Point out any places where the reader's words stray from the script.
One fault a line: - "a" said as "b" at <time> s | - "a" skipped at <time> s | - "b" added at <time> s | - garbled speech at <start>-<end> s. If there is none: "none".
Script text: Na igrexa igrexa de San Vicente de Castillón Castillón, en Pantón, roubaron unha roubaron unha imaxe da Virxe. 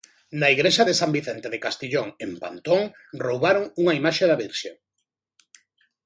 - "igrexa" skipped at 0.8 s
- "Castillón" skipped at 2.1 s
- "roubaron unha" skipped at 3.9 s